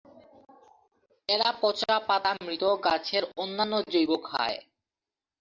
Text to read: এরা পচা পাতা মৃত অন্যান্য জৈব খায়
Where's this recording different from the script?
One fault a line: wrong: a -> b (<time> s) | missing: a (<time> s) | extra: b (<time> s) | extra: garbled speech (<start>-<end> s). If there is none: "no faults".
extra: গাছের (2.9 s)